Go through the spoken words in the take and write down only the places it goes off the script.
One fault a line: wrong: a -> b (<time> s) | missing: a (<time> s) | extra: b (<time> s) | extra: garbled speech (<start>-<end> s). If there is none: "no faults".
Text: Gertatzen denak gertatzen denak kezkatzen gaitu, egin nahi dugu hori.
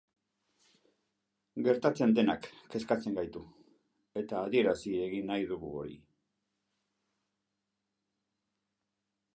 wrong: gertatzen denak kezkatzen gaitu -> kezkatzen gaitu eta adierazi (2.8 s)